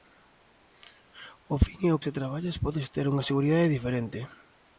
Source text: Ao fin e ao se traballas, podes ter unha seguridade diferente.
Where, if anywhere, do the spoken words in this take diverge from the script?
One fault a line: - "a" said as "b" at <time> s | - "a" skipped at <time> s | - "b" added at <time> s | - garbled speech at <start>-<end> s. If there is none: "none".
none